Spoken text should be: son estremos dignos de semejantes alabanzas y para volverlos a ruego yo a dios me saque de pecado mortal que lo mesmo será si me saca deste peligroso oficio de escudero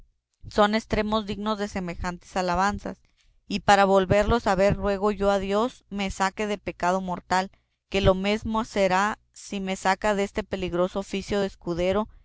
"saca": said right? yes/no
yes